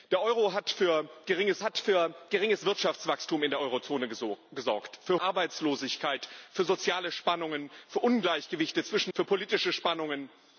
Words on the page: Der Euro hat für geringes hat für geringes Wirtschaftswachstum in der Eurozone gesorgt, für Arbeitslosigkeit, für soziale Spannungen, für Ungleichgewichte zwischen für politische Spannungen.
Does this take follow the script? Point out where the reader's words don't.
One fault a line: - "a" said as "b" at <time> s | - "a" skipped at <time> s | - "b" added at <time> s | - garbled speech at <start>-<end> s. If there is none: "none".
none